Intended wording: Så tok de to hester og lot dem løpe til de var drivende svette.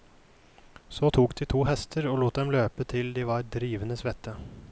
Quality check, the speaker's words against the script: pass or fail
pass